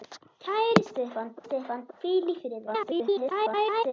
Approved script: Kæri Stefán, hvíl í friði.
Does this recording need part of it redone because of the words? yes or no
yes